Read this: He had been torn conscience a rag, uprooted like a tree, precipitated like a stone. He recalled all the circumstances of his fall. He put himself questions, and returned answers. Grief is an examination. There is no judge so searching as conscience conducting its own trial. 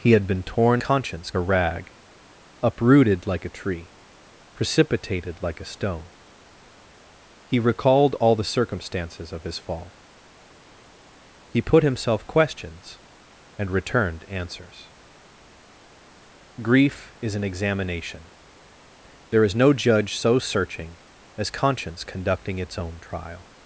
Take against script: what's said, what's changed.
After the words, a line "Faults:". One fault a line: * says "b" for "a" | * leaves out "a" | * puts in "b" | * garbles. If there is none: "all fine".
He had been torn conscience a rag, uprooted like a tree, precipitated like a stone. He recalled all the circumstances of his fall. He put himself questions, and returned answers. Grief is an examination. There is no judge so searching as conscience conducting its own trial.
Faults:
all fine